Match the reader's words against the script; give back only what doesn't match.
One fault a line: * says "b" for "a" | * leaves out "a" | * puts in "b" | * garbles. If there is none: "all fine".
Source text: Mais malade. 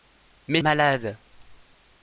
all fine